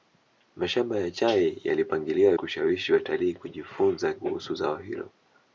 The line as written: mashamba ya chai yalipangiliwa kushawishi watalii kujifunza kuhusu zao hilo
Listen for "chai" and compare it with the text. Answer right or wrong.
right